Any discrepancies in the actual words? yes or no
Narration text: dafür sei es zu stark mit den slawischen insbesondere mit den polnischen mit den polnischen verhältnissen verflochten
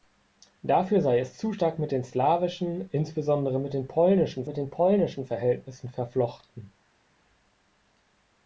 no